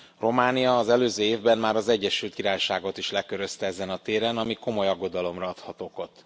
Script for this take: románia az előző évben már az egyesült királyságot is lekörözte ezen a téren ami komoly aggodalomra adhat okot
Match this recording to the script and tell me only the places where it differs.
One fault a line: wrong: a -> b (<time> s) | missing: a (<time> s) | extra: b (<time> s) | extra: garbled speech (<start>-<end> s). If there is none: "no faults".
no faults